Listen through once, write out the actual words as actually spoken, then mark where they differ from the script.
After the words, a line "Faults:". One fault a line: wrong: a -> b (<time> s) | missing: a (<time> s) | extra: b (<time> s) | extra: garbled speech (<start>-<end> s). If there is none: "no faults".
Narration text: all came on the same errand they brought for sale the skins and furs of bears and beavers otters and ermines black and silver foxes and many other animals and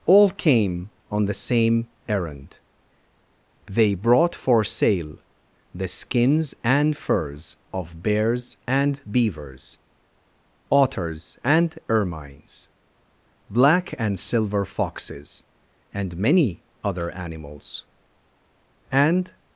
all came on the same errand they brought for sale the skins and furs of bears and beavers otters and ermines black and silver foxes and many other animals and
Faults:
no faults